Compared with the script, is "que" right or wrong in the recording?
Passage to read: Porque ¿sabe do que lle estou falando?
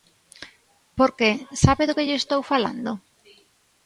right